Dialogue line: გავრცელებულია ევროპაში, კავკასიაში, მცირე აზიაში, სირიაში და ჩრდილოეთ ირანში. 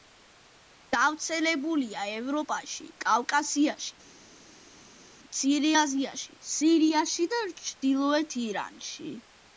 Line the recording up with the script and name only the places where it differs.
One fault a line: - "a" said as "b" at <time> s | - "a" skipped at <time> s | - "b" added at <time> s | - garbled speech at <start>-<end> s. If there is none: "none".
none